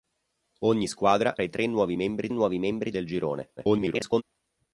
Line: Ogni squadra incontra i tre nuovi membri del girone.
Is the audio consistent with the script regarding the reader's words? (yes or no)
no